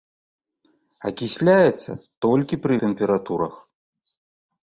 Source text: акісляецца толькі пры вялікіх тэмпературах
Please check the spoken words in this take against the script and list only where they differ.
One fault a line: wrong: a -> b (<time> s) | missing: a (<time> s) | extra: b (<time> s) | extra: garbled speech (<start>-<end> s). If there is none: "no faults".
missing: вялікіх (2.7 s)